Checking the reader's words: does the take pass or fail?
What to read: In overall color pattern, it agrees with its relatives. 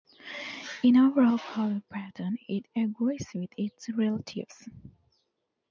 pass